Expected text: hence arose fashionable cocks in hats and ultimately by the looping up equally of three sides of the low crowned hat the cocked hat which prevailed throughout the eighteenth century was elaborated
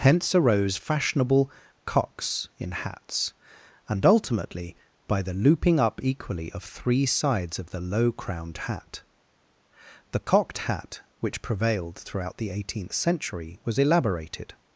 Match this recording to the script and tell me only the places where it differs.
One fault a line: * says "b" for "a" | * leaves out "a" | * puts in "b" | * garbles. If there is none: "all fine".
all fine